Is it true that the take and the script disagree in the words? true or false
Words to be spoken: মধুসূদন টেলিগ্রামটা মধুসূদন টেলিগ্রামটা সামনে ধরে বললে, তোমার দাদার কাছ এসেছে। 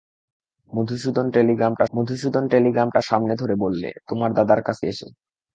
false